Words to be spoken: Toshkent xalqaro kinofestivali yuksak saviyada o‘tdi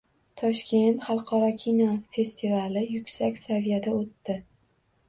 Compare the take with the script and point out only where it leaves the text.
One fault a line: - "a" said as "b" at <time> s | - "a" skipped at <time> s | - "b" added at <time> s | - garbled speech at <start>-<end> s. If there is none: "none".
none